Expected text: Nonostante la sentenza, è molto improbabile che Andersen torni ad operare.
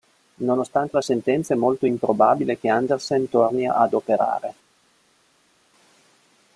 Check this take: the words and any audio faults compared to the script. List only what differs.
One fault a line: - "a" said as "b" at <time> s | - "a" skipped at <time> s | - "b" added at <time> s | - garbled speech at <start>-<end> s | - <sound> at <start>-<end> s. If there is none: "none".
none